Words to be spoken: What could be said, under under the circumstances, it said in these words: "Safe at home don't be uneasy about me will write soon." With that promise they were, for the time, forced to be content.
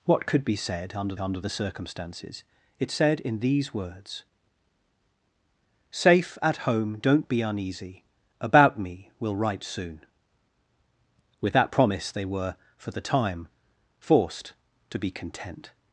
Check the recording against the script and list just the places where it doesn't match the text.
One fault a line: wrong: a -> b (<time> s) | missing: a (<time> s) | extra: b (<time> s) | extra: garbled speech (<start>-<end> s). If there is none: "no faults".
no faults